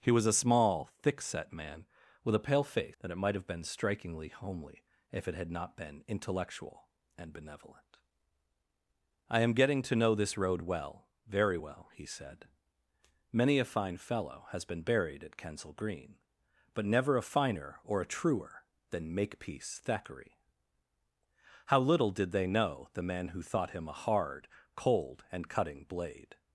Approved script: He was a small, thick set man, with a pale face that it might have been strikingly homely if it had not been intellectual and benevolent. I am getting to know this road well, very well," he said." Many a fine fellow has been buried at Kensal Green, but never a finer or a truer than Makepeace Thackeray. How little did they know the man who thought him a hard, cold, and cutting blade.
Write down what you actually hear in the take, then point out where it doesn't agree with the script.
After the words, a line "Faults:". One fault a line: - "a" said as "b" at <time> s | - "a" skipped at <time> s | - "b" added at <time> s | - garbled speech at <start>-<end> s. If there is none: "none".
He was a small, thick set man, with a pale face that it might have been strikingly homely if it had not been intellectual and benevolent. I am getting to know this road well, very well," he said." Many a fine fellow has been buried at Kensal Green, but never a finer or a truer than Makepeace Thackeray. How little did they know the man who thought him a hard, cold, and cutting blade.
Faults:
none